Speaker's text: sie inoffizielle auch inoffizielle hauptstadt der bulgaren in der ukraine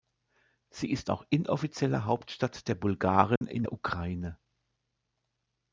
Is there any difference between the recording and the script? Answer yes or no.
yes